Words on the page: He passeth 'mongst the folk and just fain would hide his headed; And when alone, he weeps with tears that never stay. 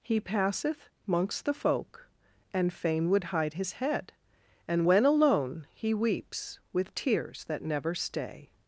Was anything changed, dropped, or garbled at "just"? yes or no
yes